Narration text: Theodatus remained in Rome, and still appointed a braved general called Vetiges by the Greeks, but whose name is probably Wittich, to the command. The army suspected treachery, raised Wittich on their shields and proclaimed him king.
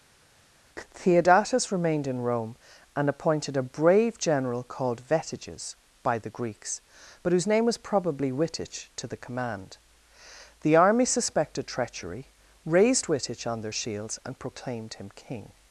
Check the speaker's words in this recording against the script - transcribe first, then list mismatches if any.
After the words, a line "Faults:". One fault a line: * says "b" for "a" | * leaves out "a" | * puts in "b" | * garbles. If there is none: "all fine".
Theodatus remained in Rome, and appointed a brave general called Vetiges by the Greeks, but whose name was probably Wittich, to the command. The army suspected treachery, raised Wittich on their shields and proclaimed him king.
Faults:
* leaves out "still"
* says "brave" for "braved"
* says "was" for "is"